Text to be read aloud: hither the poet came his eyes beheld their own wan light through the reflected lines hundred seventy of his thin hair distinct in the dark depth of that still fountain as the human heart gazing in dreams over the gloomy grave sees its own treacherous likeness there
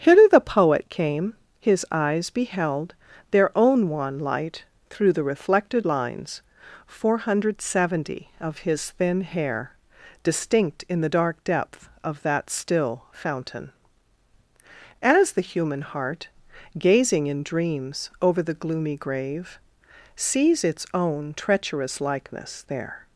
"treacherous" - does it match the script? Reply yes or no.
yes